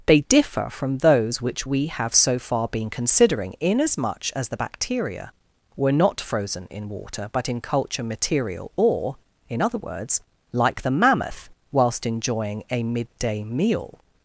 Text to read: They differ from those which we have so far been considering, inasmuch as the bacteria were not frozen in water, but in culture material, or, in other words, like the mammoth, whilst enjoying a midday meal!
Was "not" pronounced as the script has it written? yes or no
yes